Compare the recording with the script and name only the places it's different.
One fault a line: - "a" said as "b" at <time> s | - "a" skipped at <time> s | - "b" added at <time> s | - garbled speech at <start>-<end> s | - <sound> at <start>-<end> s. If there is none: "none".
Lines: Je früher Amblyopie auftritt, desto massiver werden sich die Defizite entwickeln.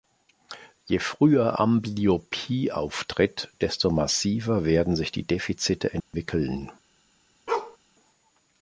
- dropout at 6.0-6.1 s
- bark at 7.5-7.8 s